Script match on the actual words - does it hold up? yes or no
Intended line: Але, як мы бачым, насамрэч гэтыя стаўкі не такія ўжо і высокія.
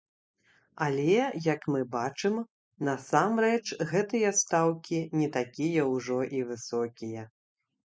yes